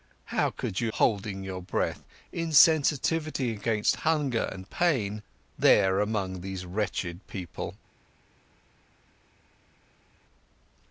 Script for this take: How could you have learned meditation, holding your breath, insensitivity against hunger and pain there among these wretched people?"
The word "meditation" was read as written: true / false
false